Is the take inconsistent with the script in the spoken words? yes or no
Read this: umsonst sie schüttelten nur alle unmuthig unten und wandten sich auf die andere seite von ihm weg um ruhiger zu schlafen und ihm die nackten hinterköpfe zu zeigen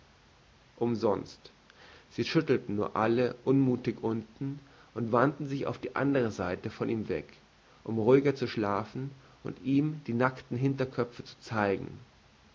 no